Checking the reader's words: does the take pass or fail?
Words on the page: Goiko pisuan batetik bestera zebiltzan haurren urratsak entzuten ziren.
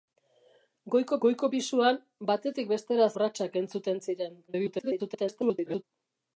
fail